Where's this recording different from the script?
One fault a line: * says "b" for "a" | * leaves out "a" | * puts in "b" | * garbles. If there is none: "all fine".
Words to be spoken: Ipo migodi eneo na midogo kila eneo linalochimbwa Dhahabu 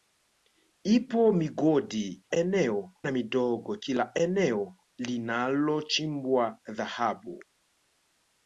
all fine